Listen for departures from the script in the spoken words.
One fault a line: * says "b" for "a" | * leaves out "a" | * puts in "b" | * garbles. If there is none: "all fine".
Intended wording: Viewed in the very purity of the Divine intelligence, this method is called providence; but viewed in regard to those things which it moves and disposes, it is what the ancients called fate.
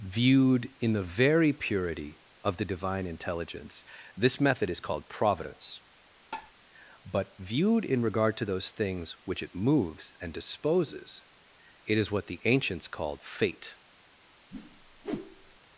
all fine